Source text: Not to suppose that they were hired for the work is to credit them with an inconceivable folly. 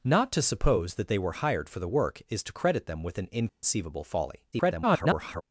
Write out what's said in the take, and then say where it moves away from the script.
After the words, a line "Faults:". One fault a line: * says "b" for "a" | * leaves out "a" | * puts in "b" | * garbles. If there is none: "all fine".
Not to suppose that they were hired for the work is to credit them with an inconceivable folly. [garbled]
Faults:
* garbles